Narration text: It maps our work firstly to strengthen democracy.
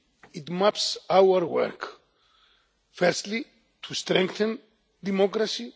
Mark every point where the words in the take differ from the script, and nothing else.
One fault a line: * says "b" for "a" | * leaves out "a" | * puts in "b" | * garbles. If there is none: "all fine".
all fine